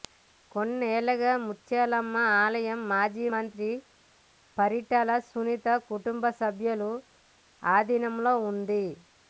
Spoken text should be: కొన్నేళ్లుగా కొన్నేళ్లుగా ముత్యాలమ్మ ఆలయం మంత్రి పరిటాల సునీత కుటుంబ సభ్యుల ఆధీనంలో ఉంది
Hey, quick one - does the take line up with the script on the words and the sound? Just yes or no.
no